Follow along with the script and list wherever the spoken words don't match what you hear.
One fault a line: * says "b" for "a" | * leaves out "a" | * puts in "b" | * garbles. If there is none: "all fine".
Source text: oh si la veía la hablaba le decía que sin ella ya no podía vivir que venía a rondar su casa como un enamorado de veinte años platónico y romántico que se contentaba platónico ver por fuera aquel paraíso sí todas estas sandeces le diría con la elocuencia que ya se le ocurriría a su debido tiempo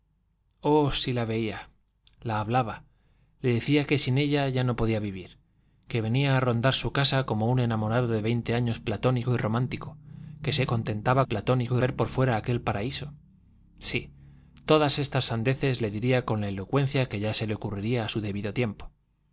all fine